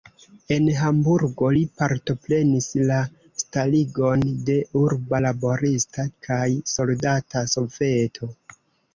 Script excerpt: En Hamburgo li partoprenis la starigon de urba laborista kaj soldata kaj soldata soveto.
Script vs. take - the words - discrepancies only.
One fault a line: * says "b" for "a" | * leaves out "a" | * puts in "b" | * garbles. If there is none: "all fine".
* leaves out "kaj soldata"